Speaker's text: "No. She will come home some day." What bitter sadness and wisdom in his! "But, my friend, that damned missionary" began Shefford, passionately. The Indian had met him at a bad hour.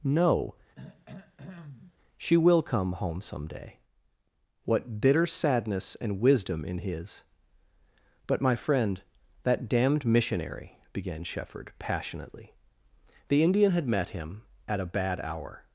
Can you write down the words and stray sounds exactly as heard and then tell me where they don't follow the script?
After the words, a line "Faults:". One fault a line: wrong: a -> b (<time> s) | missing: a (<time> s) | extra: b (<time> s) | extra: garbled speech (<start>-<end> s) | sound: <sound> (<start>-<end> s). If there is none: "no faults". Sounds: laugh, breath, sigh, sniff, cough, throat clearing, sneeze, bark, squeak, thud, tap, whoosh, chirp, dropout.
"No. She will come home some day." What bitter sadness and wisdom in his! "But, my friend, that damned missionary" began Shefford, passionately. The Indian had met him at a bad hour.
Faults:
sound: throat clearing (0.8-2.0 s)